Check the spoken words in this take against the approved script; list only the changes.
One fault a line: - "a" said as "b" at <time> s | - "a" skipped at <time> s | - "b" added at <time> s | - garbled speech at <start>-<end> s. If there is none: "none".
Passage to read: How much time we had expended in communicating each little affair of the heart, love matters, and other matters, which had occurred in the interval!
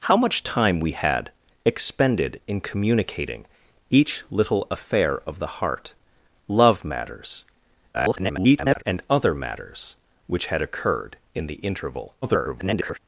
- garbled speech at 7.9-8.8 s
- garbled speech at 12.2-13.0 s